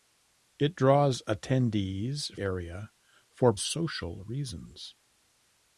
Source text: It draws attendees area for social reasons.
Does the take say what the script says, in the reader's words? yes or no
yes